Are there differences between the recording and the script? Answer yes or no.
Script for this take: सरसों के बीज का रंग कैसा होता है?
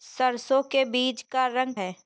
yes